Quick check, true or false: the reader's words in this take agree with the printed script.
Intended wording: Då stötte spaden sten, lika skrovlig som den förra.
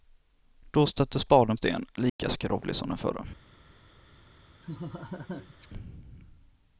true